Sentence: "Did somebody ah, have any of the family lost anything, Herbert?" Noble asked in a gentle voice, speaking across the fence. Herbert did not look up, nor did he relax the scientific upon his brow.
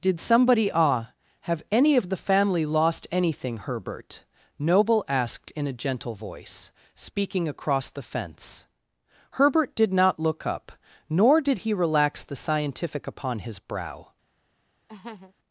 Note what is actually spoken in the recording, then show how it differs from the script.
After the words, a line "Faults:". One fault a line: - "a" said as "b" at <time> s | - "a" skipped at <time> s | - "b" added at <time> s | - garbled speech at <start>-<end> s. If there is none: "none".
"Did somebody ah, have any of the family lost anything, Herbert?" Noble asked in a gentle voice, speaking across the fence. Herbert did not look up, nor did he relax the scientific upon his brow.
Faults:
none